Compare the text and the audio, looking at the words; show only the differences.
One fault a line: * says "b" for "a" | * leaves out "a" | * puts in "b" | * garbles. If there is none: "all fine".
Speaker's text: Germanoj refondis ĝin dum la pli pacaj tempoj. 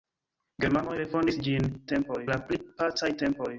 * says "tempoj" for "dum"